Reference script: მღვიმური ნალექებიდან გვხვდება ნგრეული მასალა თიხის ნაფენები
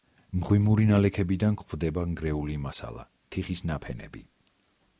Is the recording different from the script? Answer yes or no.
no